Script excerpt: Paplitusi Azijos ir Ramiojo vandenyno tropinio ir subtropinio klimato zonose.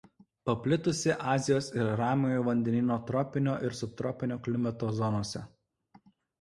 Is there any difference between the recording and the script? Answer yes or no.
no